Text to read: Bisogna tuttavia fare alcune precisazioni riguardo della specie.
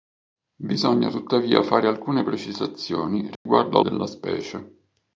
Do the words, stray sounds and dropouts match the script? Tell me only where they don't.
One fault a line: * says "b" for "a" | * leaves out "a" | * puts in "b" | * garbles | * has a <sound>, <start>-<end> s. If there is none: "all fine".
* has a dropout, 3.4-3.5 s